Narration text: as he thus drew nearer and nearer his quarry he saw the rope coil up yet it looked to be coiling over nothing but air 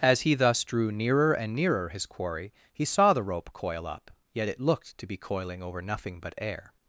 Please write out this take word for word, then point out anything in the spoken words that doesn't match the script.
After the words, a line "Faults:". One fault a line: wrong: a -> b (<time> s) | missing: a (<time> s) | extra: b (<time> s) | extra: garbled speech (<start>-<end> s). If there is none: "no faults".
as he thus drew nearer and nearer his quarry he saw the rope coil up yet it looked to be coiling over nothing but air
Faults:
no faults